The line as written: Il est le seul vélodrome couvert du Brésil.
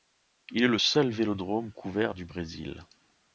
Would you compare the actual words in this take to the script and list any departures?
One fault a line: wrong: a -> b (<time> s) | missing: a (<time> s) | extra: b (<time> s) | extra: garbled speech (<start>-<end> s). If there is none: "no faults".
no faults